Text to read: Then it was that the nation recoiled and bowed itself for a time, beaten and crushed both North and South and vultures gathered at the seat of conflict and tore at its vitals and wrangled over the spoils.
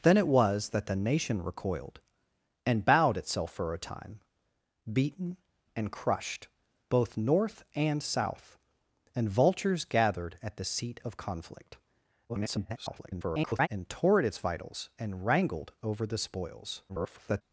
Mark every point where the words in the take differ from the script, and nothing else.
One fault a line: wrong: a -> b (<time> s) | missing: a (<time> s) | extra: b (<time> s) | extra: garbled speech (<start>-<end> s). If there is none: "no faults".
extra: garbled speech (12.3-13.7 s)
extra: garbled speech (16.9-17.4 s)